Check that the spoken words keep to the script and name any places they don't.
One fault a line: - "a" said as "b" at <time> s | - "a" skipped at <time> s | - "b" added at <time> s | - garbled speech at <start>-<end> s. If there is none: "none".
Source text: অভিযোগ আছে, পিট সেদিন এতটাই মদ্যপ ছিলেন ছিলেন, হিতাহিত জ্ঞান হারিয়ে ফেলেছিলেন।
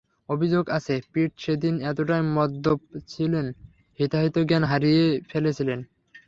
- "ছিলেন" skipped at 3.5 s